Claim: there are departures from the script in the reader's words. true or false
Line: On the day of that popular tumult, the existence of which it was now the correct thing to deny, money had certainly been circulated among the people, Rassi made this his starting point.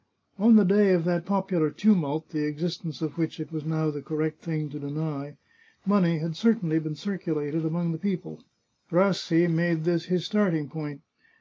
false